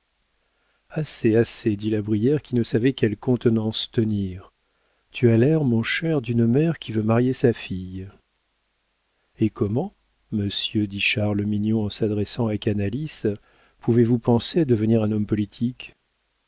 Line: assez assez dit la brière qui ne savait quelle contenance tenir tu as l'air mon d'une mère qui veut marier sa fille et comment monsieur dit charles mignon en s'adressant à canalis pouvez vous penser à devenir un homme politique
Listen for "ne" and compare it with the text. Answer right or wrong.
right